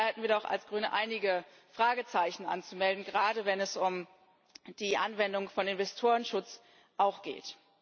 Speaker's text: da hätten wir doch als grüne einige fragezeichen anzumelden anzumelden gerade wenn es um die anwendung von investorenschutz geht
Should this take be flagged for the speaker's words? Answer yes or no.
yes